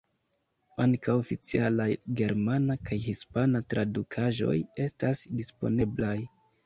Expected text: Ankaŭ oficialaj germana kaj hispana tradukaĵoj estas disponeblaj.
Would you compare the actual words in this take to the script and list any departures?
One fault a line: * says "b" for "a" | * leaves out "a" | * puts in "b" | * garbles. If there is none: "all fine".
all fine